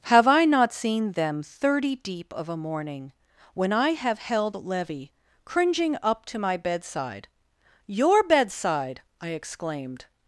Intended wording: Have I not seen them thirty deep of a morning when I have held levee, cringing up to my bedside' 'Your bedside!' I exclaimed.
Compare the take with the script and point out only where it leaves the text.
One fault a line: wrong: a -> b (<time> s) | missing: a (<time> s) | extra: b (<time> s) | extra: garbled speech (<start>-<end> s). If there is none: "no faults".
no faults